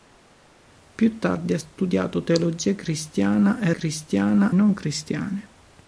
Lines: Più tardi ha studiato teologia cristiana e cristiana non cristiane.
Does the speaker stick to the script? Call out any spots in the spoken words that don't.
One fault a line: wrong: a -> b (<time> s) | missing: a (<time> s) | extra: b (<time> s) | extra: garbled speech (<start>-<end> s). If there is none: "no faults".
no faults